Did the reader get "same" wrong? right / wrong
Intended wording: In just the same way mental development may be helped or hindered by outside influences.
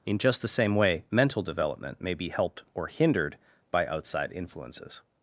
right